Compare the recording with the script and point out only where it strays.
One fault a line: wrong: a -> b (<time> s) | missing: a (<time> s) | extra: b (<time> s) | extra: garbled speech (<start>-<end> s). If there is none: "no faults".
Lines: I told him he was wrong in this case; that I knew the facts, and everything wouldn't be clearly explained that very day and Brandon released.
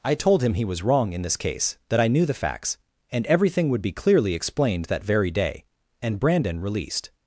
wrong: wouldn't -> would (3.7 s)